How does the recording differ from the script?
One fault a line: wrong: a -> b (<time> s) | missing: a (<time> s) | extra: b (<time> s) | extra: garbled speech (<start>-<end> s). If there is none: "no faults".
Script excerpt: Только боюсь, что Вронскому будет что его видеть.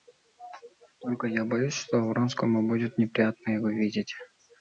extra: я (1.3 s)
wrong: что -> неприятно (3.0 s)